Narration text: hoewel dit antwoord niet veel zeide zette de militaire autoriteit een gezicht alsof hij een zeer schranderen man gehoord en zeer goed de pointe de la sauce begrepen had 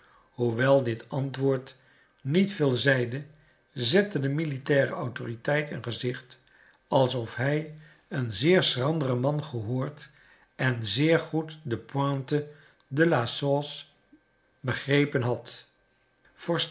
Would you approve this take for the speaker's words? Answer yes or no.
yes